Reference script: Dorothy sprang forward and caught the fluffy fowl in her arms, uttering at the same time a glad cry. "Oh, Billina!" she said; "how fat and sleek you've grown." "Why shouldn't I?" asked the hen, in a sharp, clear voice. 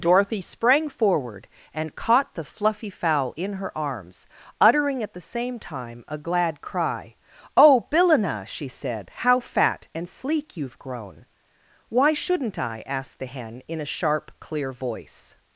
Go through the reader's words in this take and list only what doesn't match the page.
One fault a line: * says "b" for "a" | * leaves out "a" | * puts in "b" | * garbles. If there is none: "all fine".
all fine